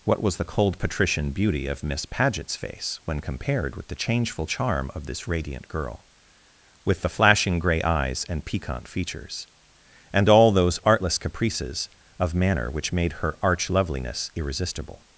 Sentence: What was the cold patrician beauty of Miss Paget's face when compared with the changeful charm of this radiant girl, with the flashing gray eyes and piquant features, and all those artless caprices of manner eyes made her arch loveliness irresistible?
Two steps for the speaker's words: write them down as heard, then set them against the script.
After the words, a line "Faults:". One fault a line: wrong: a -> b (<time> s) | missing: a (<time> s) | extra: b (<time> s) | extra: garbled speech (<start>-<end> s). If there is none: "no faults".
What was the cold patrician beauty of Miss Paget's face when compared with the changeful charm of this radiant girl, with the flashing gray eyes and piquant features, and all those artless caprices of manner which made her arch loveliness irresistible?
Faults:
wrong: eyes -> which (12.7 s)